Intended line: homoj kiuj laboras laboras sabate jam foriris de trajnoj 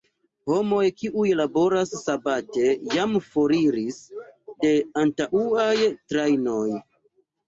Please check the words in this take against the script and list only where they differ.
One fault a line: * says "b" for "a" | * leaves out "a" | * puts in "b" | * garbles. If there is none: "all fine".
* leaves out "laboras"
* puts in "antaŭaj"